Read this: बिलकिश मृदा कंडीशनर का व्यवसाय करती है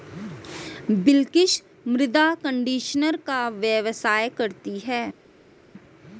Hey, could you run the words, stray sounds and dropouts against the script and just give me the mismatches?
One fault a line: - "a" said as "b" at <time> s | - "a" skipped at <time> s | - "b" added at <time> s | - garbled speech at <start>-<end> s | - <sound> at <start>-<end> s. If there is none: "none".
none